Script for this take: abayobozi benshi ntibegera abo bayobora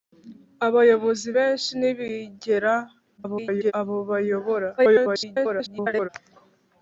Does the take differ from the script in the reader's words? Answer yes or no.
yes